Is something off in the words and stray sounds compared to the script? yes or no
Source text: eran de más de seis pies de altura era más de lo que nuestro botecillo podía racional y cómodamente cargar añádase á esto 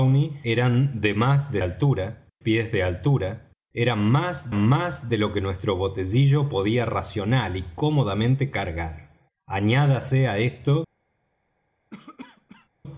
yes